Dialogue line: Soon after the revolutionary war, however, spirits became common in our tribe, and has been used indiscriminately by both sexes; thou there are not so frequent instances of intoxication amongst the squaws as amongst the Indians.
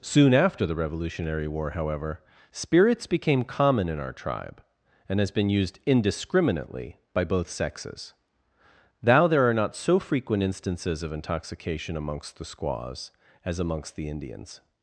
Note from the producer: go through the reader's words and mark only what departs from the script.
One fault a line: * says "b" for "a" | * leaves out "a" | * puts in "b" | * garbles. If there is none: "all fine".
all fine